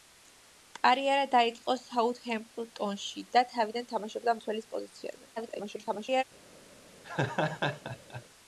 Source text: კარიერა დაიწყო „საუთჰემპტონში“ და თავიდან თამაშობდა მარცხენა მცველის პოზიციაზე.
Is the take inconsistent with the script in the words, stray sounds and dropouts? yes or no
yes